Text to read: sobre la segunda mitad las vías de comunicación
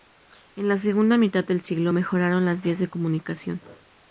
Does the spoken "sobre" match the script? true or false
false